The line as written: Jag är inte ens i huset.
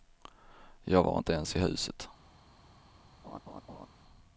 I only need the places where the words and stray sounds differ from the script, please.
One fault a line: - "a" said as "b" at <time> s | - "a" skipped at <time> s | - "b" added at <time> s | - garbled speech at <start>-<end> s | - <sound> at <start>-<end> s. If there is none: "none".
- "är" said as "var" at 1.0 s
- laugh at 3.2-3.9 s